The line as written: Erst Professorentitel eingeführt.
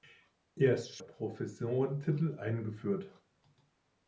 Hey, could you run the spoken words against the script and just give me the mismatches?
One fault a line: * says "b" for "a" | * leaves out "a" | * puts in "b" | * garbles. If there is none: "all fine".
all fine